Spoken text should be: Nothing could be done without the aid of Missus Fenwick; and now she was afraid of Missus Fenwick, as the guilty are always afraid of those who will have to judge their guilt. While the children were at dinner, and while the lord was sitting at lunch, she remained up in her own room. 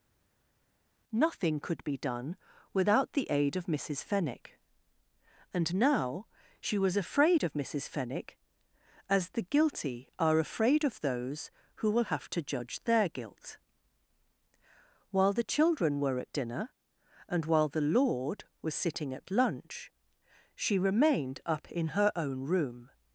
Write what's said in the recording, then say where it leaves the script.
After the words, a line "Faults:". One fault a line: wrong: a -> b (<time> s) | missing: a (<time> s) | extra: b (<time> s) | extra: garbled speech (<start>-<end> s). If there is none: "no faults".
Nothing could be done without the aid of Missus Fenwick; and now she was afraid of Missus Fenwick, as the guilty are afraid of those who will have to judge their guilt. While the children were at dinner, and while the lord was sitting at lunch, she remained up in her own room.
Faults:
missing: always (10.4 s)